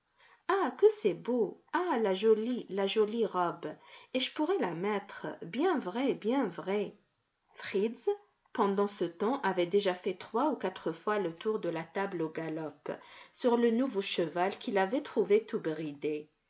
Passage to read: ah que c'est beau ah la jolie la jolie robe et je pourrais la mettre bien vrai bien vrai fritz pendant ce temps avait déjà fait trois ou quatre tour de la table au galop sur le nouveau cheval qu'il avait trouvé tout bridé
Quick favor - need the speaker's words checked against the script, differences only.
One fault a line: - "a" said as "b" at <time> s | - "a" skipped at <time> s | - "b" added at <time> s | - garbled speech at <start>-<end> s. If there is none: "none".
- "fois le" added at 10.9 s